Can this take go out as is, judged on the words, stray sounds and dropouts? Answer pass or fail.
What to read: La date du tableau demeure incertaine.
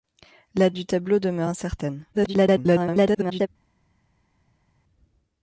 fail